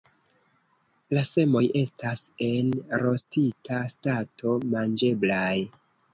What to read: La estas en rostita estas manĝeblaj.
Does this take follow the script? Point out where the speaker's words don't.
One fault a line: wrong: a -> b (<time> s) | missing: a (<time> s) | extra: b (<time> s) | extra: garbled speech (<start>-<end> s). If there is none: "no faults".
extra: semoj (1.3 s)
wrong: estas -> stato (4.0 s)